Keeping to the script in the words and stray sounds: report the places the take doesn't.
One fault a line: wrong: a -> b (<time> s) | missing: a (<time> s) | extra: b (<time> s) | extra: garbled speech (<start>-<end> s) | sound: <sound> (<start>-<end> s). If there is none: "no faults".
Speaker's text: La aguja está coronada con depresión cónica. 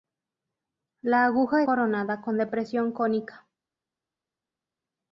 missing: está (1.6 s)